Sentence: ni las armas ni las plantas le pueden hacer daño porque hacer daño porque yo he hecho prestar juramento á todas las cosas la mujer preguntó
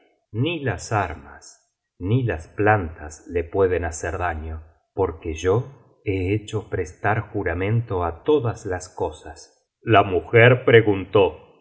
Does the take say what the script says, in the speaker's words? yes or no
no